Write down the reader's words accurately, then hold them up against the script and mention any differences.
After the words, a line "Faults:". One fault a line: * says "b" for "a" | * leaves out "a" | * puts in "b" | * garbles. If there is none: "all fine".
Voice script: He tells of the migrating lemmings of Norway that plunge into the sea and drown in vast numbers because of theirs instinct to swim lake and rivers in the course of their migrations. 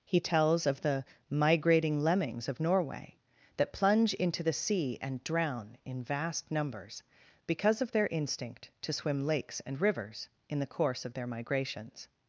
He tells of the migrating lemmings of Norway that plunge into the sea and drown in vast numbers because of their instinct to swim lakes and rivers in the course of their migrations.
Faults:
* says "their" for "theirs"
* says "lakes" for "lake"